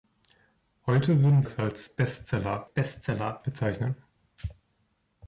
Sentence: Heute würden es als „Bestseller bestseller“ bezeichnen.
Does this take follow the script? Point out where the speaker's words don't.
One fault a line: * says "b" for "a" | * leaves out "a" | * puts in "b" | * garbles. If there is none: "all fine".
all fine